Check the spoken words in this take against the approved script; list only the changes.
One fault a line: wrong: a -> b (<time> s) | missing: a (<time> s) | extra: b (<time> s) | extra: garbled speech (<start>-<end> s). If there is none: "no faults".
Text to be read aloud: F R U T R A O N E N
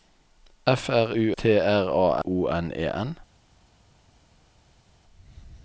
no faults